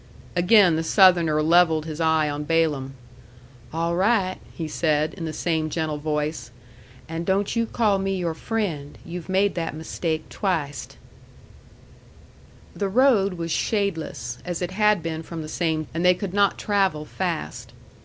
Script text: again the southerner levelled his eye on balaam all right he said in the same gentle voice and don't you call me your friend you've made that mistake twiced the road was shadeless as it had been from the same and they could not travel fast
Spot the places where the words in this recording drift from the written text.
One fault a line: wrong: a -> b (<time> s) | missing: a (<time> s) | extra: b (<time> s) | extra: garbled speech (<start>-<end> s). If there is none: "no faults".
no faults